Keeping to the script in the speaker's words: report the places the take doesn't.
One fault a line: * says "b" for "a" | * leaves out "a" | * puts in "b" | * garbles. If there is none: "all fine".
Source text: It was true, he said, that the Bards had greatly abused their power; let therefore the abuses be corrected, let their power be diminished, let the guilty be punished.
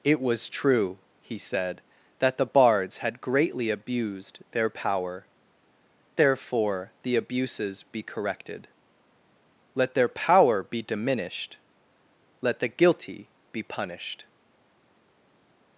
* leaves out "let"